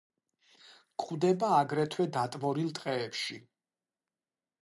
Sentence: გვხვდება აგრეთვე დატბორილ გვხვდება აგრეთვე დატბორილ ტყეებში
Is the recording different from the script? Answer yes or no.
yes